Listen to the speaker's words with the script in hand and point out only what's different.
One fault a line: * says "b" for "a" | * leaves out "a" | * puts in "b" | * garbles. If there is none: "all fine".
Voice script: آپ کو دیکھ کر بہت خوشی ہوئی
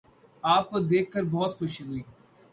all fine